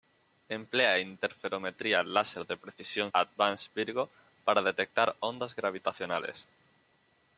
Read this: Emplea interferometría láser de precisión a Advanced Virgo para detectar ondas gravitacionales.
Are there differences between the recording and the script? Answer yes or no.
no